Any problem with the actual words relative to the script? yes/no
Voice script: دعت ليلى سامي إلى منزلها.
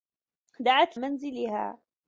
yes